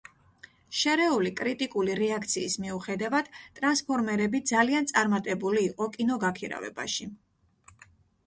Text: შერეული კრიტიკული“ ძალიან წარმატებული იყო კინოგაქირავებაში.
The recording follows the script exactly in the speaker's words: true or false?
false